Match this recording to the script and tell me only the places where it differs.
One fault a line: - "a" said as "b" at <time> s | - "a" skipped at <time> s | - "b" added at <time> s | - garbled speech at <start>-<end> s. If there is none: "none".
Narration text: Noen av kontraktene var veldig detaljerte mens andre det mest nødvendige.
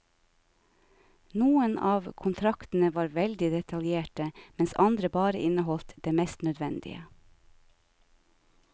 - "bare inneholdt" added at 5.2 s